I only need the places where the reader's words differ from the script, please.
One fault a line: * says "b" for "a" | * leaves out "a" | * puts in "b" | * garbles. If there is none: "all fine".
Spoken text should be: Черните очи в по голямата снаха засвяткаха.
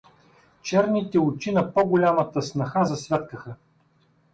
* says "на" for "в"